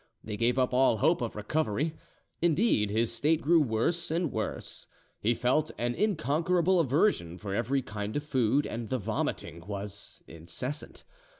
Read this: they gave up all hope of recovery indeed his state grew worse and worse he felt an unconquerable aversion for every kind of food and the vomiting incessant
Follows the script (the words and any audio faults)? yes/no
no